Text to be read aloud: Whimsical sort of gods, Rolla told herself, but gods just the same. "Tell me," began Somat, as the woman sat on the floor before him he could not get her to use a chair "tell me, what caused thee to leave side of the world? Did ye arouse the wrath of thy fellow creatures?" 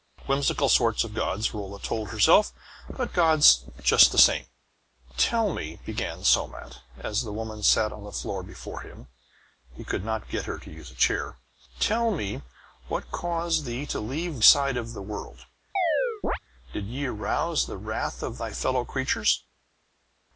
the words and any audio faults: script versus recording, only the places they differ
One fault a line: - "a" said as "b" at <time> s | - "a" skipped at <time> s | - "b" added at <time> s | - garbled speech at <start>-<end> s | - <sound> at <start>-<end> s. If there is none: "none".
- chirp at 15.8-16.4 s